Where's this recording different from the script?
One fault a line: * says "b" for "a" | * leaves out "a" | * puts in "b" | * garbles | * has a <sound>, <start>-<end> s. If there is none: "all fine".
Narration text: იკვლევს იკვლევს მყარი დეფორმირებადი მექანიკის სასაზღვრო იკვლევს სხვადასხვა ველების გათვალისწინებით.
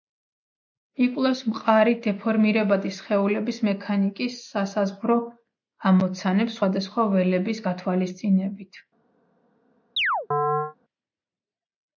* leaves out "იკვლევს"
* puts in "სხეულების"
* says "ამოცანებს" for "იკვლევს"
* has a chirp, 10.0-10.8 s